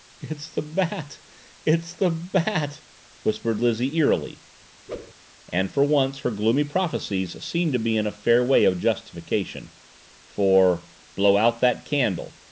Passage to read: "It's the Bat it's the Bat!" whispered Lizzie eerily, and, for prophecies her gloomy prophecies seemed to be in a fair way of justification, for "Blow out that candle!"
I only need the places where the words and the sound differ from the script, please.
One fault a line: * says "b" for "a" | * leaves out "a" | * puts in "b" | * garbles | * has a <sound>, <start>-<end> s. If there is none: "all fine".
* has a whoosh, 4.9-5.1 s
* says "once" for "prophecies"